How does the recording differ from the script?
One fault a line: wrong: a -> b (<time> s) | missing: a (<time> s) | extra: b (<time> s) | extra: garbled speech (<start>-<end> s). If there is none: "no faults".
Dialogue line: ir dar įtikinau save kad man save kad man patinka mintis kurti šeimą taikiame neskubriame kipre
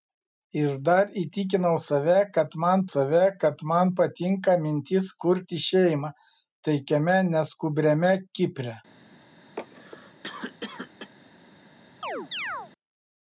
no faults